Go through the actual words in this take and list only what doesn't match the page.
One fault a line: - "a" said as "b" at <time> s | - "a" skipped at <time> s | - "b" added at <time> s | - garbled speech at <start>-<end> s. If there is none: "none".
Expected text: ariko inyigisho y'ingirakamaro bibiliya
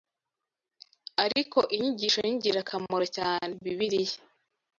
- "cyane" added at 3.2 s